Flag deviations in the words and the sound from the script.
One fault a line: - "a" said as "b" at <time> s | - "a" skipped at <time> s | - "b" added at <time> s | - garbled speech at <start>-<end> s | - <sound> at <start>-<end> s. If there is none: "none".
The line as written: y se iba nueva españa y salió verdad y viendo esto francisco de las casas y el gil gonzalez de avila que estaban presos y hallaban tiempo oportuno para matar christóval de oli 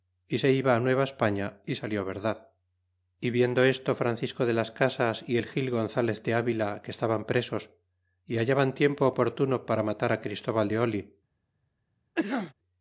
- cough at 12.2-12.5 s